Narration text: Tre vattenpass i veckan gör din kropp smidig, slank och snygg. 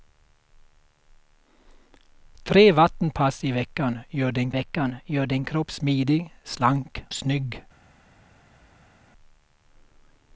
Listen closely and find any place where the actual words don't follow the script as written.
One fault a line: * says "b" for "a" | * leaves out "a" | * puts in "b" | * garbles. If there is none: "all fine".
* puts in "veckan gör din"
* leaves out "och"